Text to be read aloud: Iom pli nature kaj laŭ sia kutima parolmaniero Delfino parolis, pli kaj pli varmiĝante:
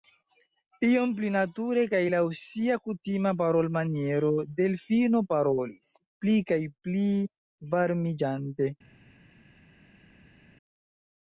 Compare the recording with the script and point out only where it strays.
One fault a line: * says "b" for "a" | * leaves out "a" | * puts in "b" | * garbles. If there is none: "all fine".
all fine